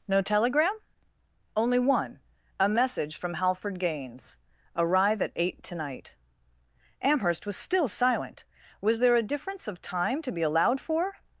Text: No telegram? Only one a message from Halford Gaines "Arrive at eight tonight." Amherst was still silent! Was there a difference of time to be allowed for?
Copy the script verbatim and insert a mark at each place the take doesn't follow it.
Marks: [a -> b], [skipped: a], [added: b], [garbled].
No telegram? Only one a message from Halford Gaines "Arrive at eight tonight." Amherst was still silent! Was there a difference of time to be allowed for?